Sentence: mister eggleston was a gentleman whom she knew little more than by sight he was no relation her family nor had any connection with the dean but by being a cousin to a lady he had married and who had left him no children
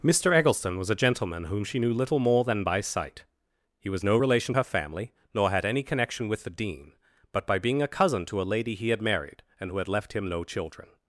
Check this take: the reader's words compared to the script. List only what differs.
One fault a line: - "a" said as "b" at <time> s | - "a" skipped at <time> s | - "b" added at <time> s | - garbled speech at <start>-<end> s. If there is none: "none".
none